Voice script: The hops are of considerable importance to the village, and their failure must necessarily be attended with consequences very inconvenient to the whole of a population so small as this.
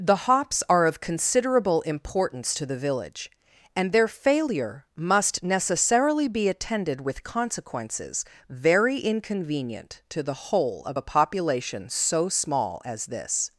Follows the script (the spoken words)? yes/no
yes